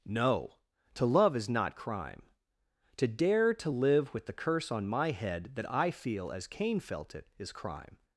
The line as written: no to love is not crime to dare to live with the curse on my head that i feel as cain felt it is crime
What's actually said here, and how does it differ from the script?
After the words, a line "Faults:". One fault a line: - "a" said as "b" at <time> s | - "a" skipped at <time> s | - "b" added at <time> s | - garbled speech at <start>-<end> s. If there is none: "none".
no to love is not crime to dare to live with the curse on my head that i feel as cain felt it is crime
Faults:
none